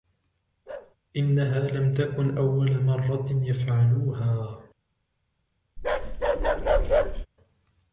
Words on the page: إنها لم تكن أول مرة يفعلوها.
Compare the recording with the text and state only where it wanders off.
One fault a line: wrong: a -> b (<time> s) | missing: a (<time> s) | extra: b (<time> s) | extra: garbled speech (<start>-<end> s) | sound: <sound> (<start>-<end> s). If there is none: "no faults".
sound: bark (0.7-1.0 s)
sound: bark (5.8-7.3 s)